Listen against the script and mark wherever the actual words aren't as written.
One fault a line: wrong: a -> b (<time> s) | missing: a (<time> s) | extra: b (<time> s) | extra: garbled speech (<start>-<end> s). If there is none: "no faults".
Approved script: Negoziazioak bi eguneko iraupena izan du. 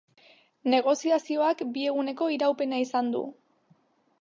no faults